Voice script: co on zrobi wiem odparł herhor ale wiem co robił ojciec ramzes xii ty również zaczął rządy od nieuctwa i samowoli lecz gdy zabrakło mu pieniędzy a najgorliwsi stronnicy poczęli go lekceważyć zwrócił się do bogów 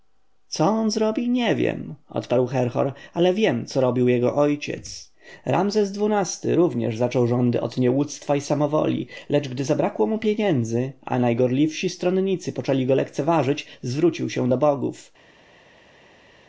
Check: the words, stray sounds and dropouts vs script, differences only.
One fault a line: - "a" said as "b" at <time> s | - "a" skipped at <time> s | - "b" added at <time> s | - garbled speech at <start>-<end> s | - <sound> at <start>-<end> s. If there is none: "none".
- "nie" added at 1.3 s
- "jego" added at 4.1 s